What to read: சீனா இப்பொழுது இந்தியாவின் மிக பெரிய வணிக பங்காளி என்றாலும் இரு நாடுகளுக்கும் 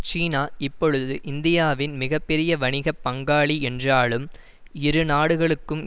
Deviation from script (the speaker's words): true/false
false